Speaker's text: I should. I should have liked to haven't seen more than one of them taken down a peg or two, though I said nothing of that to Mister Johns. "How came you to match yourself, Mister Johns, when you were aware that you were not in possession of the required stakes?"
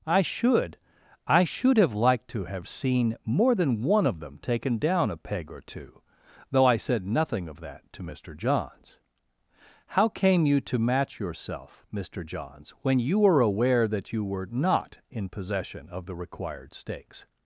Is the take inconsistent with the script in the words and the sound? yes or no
yes